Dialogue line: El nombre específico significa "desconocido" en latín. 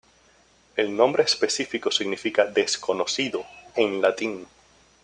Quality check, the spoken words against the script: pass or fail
pass